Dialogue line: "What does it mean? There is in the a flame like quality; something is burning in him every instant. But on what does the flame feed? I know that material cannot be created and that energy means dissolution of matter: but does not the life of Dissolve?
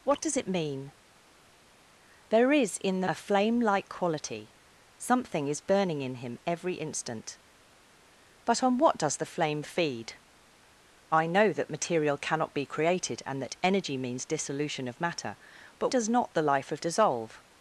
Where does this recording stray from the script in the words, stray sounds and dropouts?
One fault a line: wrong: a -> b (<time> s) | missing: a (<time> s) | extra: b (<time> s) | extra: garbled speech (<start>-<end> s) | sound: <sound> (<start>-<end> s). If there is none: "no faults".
no faults